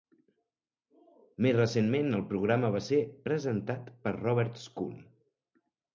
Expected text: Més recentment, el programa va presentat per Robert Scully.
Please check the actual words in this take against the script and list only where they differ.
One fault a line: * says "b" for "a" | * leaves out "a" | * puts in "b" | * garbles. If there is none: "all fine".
* puts in "ser"